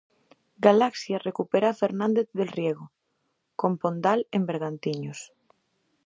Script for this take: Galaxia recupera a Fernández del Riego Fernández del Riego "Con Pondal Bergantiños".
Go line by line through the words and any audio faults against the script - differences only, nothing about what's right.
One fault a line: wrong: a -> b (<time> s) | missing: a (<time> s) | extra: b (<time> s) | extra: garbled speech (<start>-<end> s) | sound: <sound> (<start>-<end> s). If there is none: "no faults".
missing: Fernández del Riego (2.9 s)
extra: en (4.3 s)